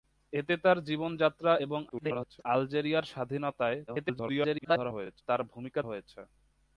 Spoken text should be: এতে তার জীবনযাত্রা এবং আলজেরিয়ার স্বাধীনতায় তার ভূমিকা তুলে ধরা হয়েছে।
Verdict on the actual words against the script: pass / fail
fail